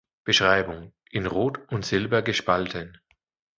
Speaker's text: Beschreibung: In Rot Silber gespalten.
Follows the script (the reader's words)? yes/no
no